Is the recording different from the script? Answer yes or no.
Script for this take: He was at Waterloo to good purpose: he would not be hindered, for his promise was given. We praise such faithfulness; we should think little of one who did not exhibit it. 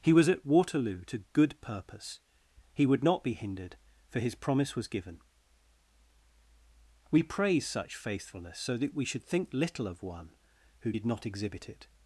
yes